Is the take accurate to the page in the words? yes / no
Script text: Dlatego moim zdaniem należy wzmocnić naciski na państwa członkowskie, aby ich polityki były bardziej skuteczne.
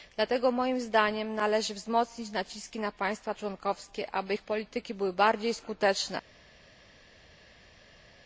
yes